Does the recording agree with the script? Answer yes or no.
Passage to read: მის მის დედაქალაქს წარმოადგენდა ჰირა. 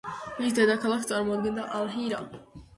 no